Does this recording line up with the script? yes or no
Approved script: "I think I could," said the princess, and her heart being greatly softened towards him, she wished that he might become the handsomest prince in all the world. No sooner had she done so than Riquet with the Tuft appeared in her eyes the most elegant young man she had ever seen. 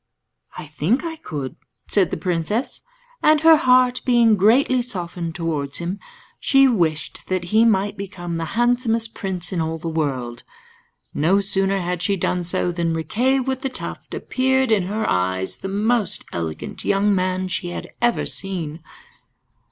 yes